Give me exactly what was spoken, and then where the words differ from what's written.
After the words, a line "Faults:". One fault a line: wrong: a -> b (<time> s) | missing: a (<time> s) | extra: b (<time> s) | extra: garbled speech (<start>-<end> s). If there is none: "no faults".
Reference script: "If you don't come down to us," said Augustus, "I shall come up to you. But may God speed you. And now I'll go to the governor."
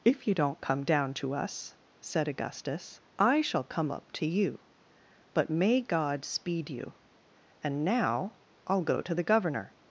"If you don't come down to us," said Augustus, "I shall come up to you. But may God speed you. And now I'll go to the governor."
Faults:
no faults